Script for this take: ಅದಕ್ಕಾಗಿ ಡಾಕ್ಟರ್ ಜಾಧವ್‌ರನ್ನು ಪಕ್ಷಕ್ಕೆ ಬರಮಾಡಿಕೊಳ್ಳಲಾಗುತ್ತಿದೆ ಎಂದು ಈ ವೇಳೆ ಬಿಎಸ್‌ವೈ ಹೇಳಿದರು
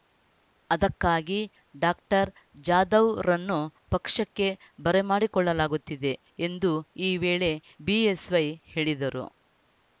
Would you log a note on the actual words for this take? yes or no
no